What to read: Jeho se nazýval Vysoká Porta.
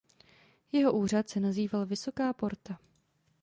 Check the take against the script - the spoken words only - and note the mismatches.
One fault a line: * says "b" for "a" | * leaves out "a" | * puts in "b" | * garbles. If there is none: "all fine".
* puts in "úřad"